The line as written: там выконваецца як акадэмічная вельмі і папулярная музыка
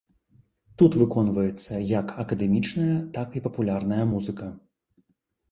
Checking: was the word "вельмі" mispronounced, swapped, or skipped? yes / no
yes